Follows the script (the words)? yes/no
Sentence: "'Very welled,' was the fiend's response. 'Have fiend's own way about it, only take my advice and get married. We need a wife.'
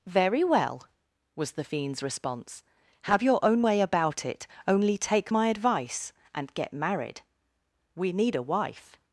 no